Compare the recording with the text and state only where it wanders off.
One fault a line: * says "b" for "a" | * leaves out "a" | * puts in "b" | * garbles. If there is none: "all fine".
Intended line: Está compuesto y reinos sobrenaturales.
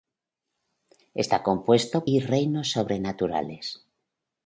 all fine